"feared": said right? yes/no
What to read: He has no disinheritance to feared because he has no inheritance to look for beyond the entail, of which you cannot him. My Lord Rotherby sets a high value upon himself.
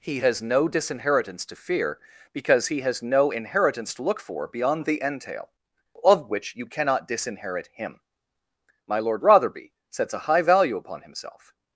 no